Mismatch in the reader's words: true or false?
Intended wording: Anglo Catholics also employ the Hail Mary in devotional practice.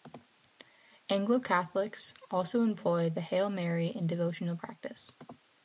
false